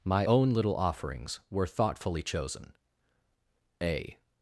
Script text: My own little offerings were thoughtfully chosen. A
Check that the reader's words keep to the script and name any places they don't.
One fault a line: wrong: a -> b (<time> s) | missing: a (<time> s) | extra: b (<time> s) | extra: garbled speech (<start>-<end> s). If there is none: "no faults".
no faults